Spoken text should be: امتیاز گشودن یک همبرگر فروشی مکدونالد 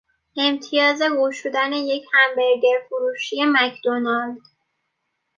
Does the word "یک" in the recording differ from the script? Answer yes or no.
no